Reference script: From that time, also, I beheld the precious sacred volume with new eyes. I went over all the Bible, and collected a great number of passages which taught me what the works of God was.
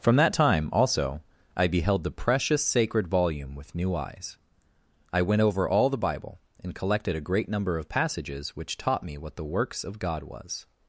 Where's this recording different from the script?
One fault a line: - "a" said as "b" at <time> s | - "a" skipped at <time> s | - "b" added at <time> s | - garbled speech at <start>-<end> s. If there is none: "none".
none